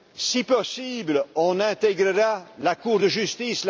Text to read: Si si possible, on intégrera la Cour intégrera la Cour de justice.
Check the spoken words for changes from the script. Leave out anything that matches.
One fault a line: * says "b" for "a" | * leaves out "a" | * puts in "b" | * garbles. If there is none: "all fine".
* leaves out "si"
* leaves out "intégrera la Cour"